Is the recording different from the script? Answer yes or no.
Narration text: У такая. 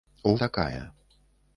no